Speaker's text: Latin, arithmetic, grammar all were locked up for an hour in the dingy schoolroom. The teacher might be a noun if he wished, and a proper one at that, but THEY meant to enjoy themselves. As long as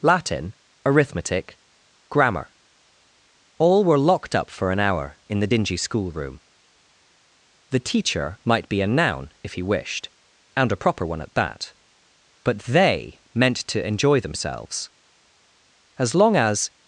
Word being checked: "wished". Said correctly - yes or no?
yes